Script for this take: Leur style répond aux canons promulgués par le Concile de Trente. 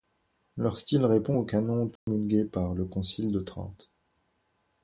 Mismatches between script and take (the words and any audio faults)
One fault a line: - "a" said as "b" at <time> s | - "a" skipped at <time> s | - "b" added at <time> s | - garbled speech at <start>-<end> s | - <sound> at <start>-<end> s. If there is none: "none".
- dropout at 2.0-2.1 s